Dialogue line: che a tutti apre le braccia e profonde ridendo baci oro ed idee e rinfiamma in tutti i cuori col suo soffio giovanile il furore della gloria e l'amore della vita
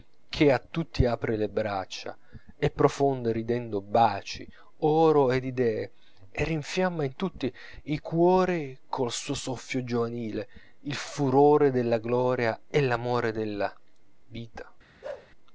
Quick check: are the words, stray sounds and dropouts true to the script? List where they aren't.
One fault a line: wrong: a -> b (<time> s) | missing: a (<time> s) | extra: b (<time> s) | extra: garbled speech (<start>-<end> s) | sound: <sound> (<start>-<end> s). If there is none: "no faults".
sound: bark (15.0-15.3 s)